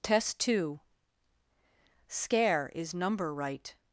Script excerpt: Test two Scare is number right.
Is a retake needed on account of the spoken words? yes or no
no